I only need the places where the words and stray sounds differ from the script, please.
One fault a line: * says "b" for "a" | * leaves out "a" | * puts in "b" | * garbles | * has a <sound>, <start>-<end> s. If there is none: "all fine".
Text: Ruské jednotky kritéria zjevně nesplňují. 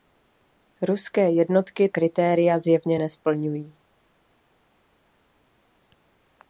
all fine